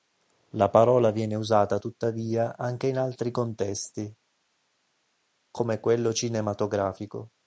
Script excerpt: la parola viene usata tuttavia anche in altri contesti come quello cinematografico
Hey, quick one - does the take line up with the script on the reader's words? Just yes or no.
yes